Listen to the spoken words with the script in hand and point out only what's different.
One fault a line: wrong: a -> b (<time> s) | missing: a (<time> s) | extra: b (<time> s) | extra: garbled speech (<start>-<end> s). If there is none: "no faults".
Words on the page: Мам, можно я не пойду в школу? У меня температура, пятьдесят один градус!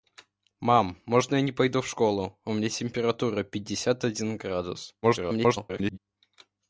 extra: garbled speech (5.0-6.0 s)